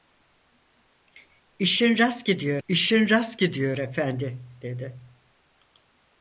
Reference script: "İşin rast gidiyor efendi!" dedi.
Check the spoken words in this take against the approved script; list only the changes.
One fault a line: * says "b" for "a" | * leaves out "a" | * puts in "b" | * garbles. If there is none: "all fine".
* puts in "i̇şin rast gidiyor"